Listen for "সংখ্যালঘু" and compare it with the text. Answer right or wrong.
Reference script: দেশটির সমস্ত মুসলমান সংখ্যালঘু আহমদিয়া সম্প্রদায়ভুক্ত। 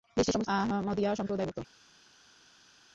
wrong